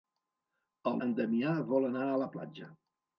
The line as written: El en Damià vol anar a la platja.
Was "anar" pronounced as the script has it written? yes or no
yes